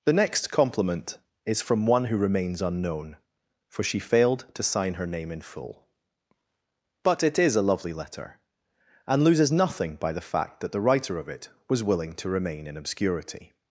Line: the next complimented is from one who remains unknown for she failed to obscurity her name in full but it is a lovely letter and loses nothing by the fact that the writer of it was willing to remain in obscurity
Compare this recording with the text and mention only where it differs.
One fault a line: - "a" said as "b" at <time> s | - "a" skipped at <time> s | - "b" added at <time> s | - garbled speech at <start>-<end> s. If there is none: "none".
- "complimented" said as "compliment" at 0.5 s
- "obscurity" said as "sign" at 4.6 s